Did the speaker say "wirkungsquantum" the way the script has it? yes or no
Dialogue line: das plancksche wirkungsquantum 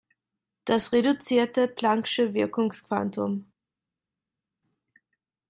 yes